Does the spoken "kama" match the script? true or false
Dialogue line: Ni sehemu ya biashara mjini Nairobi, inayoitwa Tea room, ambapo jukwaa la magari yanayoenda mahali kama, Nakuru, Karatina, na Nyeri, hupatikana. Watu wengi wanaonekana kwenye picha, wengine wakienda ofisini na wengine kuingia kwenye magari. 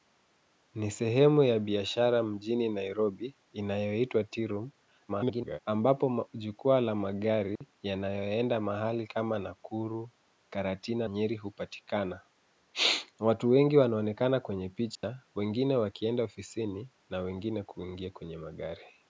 true